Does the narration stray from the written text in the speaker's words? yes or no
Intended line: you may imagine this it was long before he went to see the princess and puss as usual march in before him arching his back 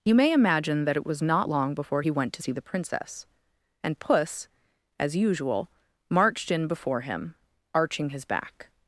yes